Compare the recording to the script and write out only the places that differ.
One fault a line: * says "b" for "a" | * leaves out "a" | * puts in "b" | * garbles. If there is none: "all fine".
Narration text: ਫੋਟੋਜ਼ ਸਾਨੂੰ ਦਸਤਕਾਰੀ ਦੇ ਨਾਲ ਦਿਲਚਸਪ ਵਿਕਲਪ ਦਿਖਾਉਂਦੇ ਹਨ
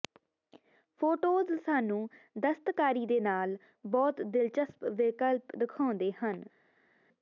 * puts in "ਬਹੁਤ"